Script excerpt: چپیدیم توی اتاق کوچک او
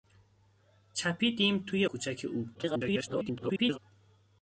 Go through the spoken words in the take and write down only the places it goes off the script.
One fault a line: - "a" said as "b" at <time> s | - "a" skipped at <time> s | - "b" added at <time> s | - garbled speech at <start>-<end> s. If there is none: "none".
- "اتاق" skipped at 1.9 s
- garbled speech at 2.5-3.8 s